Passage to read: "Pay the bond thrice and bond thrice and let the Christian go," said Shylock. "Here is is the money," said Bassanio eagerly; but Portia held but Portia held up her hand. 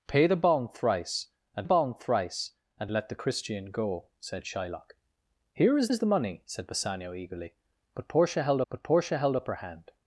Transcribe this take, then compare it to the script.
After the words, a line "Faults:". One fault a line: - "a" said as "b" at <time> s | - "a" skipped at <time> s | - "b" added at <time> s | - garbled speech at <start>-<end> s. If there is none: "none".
"Pay the bond thrice and bond thrice and let the Christian go," said Shylock. "Here is is the money," said Bassanio eagerly; but Portia held but Portia held up her hand.
Faults:
none